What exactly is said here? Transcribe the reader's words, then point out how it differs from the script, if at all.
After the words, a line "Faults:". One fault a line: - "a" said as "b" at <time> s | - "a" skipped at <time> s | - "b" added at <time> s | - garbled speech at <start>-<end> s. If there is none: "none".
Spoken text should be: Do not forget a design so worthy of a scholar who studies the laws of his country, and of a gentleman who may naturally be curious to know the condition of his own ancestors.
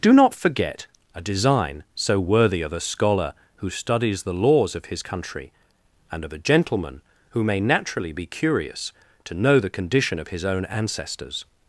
Do not forget a design so worthy of a scholar who studies the laws of his country, and of a gentleman who may naturally be curious to know the condition of his own ancestors.
Faults:
none